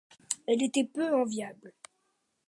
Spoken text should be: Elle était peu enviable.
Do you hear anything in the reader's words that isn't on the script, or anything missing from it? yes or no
no